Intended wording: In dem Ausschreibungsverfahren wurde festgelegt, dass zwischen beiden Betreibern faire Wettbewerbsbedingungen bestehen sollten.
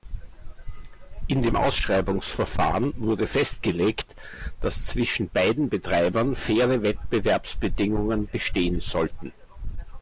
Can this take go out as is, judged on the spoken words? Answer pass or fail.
pass